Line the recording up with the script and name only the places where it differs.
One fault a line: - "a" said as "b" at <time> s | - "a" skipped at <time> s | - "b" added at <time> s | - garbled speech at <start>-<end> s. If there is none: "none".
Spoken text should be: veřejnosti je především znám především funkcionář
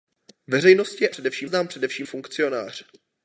none